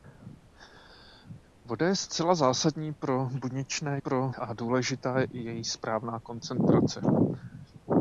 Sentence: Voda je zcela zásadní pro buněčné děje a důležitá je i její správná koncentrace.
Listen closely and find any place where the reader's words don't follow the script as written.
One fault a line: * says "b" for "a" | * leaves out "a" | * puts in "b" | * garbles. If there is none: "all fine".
* says "pro" for "děje"